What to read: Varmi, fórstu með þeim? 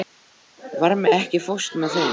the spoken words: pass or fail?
fail